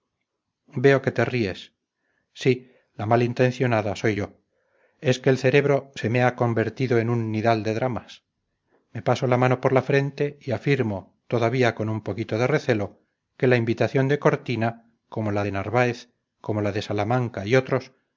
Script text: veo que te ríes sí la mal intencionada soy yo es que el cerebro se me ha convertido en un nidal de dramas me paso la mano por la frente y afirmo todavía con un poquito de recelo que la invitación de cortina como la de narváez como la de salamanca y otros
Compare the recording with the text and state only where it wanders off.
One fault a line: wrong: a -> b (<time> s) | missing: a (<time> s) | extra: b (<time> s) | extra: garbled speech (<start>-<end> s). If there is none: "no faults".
no faults